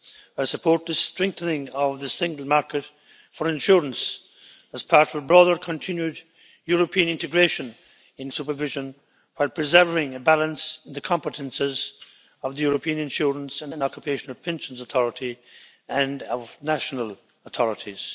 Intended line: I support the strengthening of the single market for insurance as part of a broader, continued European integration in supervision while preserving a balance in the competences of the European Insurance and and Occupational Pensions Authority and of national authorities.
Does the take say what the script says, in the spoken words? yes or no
yes